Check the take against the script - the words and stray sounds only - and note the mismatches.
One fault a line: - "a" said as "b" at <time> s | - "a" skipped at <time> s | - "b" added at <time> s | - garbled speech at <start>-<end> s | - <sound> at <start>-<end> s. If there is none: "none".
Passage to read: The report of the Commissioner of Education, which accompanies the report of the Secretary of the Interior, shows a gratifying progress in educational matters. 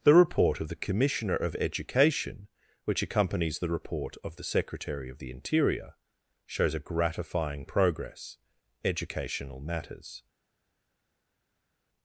- "in" skipped at 8.4 s